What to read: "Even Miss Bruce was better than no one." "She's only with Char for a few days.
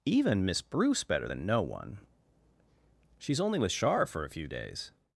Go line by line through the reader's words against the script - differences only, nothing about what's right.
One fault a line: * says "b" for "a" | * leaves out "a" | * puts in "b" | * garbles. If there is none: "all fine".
* leaves out "was"